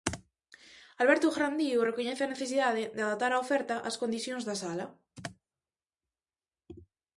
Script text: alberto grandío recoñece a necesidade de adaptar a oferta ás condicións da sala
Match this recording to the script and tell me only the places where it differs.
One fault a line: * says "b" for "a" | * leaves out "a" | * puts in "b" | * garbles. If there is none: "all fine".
all fine